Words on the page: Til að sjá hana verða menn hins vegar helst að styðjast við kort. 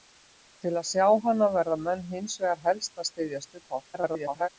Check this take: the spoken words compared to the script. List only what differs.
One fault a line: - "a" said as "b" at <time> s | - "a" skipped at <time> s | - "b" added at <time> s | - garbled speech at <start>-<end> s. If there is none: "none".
- garbled speech at 3.9-4.5 s